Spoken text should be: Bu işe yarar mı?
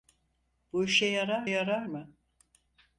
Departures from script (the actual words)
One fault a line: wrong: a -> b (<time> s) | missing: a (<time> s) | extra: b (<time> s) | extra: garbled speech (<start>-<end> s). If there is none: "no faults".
extra: yarar (1.4 s)